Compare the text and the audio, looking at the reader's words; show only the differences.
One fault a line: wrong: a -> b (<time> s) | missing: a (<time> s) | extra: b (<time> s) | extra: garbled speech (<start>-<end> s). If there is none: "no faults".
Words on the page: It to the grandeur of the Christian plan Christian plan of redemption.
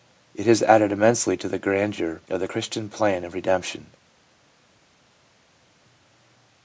extra: has added immensely (0.5 s)
missing: Christian plan (3.3 s)